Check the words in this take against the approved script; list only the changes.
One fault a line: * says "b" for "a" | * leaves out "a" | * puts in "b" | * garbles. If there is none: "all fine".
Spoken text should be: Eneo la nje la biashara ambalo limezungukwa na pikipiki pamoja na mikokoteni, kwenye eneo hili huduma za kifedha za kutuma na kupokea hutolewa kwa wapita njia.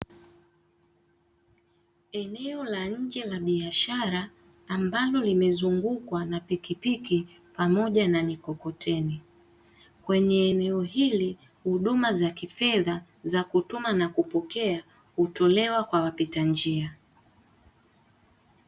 all fine